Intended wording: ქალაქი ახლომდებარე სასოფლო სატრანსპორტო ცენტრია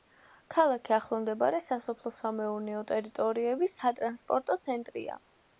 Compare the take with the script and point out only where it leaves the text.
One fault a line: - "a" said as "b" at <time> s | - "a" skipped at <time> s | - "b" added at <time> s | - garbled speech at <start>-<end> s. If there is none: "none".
- "სამეურნეო ტერიტორიების" added at 2.2 s